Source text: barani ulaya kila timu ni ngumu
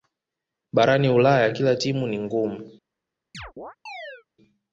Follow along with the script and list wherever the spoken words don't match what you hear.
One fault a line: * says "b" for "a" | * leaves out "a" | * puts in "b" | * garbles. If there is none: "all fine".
all fine